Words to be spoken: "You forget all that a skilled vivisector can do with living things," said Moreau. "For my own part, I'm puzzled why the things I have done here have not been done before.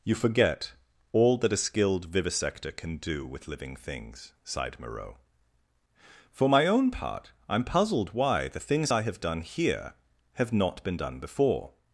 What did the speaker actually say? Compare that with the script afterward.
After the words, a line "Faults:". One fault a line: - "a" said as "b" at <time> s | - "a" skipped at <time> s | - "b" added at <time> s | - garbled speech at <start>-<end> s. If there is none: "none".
"You forget all that a skilled vivisector can do with living things," sighed Moreau. "For my own part, I'm puzzled why the things I have done here have not been done before.
Faults:
- "said" said as "sighed" at 4.4 s